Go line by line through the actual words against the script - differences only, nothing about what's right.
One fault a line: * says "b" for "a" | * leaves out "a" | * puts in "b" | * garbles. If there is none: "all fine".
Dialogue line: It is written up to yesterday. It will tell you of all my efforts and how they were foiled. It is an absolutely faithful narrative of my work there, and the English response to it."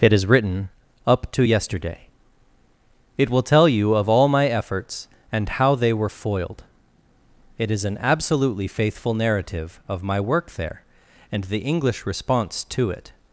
all fine